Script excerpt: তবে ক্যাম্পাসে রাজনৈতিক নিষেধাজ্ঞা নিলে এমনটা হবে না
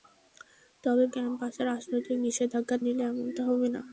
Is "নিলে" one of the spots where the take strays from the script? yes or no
no